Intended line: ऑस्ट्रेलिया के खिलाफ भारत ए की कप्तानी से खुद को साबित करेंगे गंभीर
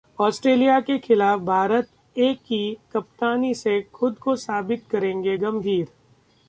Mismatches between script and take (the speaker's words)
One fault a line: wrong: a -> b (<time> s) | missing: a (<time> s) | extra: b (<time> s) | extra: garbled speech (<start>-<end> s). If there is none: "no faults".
no faults